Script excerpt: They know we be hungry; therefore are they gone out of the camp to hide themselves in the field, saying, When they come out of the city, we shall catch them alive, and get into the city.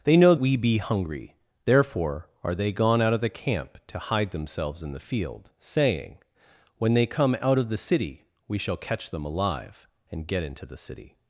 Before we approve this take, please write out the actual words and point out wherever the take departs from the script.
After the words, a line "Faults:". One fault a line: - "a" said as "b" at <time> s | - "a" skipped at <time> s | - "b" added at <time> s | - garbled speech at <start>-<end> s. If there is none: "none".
They know we be hungry; therefore are they gone out of the camp to hide themselves in the field, saying, When they come out of the city, we shall catch them alive, and get into the city.
Faults:
none